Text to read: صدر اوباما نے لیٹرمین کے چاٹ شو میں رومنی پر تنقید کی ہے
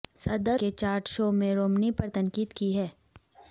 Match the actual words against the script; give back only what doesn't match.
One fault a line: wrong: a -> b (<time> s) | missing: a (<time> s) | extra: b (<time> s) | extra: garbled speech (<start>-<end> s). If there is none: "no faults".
missing: اوباما نے لیٹرمین (0.6 s)